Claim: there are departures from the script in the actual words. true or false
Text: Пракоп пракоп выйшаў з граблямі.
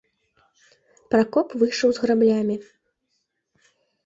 true